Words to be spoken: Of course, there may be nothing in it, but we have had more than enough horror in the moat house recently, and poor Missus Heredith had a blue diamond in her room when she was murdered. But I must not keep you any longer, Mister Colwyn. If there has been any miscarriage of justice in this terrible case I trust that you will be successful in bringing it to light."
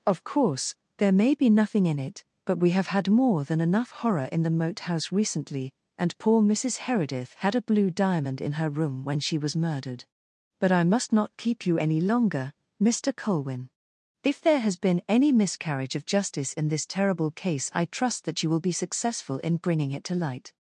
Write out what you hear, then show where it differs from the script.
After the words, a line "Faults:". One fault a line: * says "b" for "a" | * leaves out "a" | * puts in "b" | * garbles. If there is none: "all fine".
Of course, there may be nothing in it, but we have had more than enough horror in the moat house recently, and poor Missus Heredith had a blue diamond in her room when she was murdered. But I must not keep you any longer, Mister Colwyn. If there has been any miscarriage of justice in this terrible case I trust that you will be successful in bringing it to light."
Faults:
all fine